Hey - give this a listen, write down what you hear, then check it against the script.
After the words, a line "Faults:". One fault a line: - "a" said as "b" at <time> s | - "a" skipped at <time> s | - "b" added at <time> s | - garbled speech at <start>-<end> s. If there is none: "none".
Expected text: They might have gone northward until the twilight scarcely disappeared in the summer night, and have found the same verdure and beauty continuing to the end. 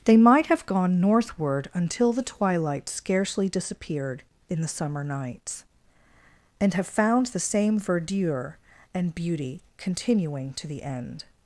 They might have gone northward until the twilight scarcely disappeared in the summer nights, and have found the same verdure and beauty continuing to the end.
Faults:
- "night" said as "nights" at 5.0 s